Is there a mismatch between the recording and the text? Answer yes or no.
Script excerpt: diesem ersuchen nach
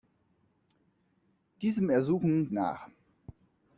no